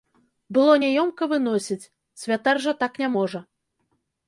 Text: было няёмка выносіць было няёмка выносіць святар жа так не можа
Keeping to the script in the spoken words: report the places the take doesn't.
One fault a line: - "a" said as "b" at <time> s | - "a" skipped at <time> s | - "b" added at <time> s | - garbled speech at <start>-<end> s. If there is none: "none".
- "было няёмка выносіць" skipped at 1.9 s